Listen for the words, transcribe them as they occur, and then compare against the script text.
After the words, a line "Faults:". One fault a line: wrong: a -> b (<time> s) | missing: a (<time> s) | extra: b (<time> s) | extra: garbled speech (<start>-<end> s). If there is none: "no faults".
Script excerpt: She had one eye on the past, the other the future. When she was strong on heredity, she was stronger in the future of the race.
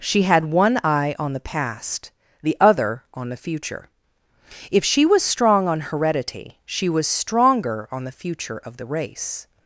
She had one eye on the past, the other on the future. If she was strong on heredity, she was stronger on the future of the race.
Faults:
extra: on (3.1 s)
wrong: When -> If (4.7 s)
wrong: in -> on (7.9 s)